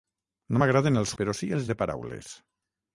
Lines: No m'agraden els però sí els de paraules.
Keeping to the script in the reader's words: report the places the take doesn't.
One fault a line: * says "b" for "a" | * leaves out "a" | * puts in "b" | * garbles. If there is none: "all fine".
all fine